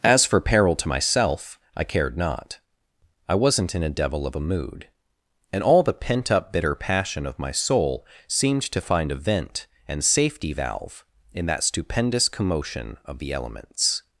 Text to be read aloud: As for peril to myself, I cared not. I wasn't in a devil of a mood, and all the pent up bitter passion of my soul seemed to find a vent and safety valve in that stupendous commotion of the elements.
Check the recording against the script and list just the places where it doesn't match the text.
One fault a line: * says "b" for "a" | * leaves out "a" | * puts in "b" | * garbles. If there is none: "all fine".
all fine